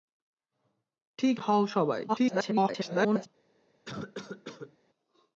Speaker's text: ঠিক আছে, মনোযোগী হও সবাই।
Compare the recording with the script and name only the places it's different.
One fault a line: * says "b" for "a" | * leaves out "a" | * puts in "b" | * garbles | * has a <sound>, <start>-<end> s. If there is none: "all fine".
* leaves out "আছে মনোযোগী"
* garbles
* has a cough, 3.8-4.8 s